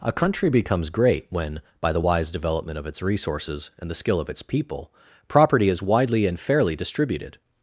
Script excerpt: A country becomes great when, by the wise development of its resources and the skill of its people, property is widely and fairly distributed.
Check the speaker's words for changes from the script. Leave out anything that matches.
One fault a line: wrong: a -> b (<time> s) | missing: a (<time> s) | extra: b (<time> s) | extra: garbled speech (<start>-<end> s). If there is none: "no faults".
no faults